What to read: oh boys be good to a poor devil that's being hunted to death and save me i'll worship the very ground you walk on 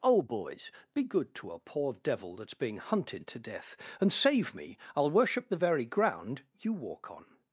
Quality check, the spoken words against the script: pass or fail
pass